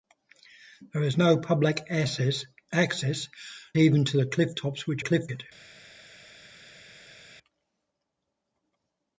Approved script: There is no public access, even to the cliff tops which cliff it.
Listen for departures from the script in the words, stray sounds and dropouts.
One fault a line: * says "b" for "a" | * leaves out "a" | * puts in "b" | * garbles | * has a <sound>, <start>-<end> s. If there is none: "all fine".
all fine